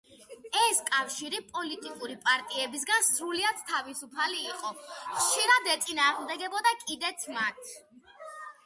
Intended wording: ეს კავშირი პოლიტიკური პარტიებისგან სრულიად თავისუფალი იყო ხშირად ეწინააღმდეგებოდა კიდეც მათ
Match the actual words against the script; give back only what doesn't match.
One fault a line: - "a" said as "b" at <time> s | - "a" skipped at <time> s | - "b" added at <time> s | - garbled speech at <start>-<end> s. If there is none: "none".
none